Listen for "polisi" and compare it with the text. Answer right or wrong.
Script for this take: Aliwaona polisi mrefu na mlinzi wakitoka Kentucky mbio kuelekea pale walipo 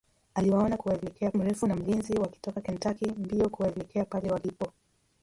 wrong